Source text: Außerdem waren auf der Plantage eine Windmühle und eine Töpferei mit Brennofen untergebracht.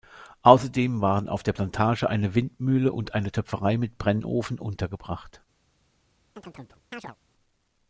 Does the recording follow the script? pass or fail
pass